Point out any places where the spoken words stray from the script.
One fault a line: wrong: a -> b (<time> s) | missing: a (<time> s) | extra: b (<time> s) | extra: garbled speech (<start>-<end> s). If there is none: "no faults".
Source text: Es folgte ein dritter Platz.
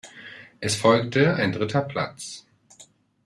no faults